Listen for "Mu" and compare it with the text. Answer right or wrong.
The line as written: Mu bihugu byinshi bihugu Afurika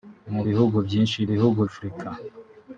right